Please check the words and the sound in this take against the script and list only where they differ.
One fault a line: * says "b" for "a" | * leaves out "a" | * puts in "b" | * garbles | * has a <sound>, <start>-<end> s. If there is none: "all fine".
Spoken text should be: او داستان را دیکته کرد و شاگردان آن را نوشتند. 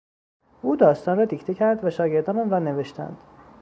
all fine